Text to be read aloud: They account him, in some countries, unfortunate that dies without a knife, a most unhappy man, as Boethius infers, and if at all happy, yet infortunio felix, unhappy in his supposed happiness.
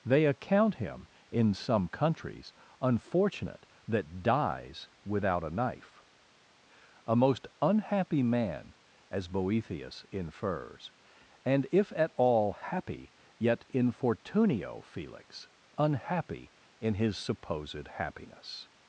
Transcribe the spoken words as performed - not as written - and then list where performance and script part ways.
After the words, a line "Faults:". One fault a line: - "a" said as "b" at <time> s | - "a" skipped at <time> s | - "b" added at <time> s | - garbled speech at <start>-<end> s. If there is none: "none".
They account him, in some countries, unfortunate that dies without a knife, a most unhappy man, as Boethius infers, and if at all happy, yet infortunio felix, unhappy in his supposed happiness.
Faults:
none